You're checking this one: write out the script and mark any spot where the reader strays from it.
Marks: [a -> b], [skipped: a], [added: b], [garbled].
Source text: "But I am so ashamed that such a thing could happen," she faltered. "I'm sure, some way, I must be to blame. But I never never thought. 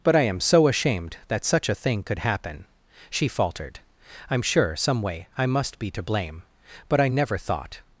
"But I am so ashamed that such a thing could happen," she faltered. "I'm sure, some way, I must be to blame. But I never [skipped: never] thought.